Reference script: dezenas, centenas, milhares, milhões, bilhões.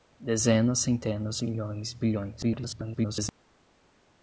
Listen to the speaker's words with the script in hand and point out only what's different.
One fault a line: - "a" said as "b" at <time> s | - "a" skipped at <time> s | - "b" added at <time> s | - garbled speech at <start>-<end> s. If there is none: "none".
- "milhares" skipped at 1.4 s
- garbled speech at 2.4-3.3 s